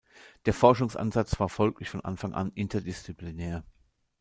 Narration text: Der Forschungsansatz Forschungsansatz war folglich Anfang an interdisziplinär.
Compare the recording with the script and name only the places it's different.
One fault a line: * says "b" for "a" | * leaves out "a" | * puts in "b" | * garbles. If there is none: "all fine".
* leaves out "Forschungsansatz"
* puts in "von"